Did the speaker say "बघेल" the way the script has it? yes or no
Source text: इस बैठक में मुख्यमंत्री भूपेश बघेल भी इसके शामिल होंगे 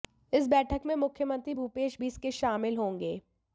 no